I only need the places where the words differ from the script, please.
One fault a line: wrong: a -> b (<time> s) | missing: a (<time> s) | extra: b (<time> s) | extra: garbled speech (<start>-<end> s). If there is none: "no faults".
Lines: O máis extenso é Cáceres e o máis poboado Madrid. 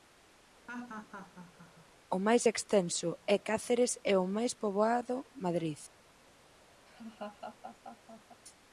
no faults